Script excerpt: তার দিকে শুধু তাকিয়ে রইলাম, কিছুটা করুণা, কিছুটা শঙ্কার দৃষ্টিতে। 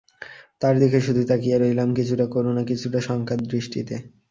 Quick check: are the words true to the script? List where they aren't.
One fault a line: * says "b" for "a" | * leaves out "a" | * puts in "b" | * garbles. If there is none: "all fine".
all fine